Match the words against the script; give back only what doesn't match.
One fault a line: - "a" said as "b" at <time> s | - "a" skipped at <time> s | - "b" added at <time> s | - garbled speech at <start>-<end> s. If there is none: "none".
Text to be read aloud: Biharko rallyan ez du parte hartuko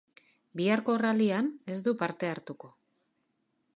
none